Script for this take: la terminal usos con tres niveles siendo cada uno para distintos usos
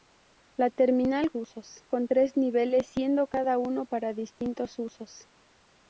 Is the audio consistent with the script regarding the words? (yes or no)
yes